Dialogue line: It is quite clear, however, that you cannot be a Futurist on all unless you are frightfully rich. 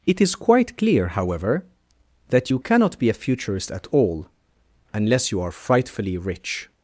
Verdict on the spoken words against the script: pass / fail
fail